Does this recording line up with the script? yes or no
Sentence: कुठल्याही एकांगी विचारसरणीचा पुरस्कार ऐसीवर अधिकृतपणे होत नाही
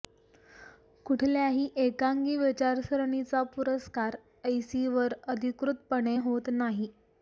yes